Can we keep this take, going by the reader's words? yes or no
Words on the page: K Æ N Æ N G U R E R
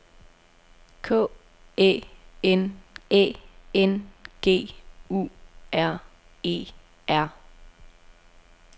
yes